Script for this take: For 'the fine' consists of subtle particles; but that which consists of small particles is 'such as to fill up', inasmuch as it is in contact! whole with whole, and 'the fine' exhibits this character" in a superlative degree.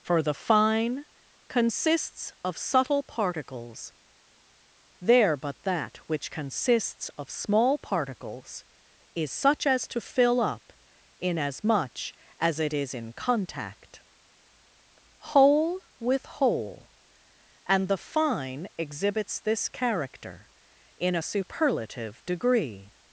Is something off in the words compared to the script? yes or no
yes